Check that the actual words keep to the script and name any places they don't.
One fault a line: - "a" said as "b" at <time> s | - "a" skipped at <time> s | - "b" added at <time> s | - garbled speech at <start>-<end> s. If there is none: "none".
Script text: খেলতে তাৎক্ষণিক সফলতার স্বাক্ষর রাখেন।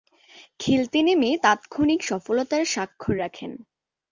- "নেমে" added at 1.1 s